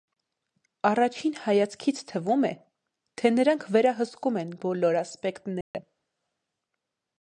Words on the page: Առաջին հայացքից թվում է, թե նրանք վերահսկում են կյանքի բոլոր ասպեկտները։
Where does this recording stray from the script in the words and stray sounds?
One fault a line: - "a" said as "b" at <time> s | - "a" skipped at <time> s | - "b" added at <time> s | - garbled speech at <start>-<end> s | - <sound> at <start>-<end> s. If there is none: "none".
- "կյանքի" skipped at 4.5 s
- dropout at 5.6-5.7 s